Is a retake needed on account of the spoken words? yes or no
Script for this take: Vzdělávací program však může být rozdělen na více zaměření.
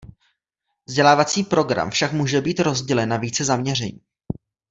no